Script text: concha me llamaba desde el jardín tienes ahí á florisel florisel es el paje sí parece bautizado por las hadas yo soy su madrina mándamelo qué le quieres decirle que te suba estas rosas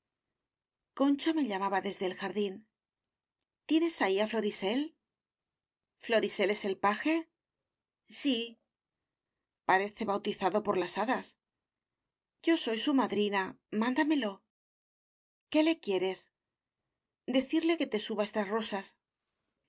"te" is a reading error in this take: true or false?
false